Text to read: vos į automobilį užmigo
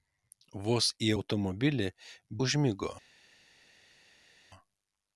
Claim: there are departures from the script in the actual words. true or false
false